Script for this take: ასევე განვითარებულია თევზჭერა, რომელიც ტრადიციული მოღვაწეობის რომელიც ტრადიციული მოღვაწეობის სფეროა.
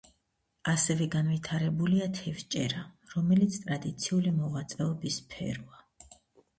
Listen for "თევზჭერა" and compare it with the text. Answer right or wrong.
right